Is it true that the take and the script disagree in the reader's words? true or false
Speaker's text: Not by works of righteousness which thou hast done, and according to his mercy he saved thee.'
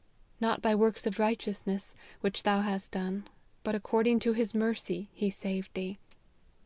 true